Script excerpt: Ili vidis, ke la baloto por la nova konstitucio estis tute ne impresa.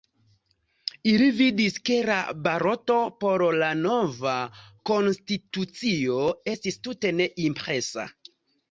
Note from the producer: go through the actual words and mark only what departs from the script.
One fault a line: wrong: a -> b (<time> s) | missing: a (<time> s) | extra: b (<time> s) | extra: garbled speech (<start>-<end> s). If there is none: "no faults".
no faults